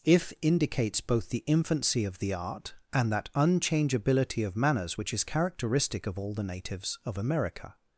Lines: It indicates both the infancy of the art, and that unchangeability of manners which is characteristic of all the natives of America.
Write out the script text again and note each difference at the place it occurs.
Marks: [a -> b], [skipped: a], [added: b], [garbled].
[It -> If] indicates both the infancy of the art, and that unchangeability of manners which is characteristic of all the natives of America.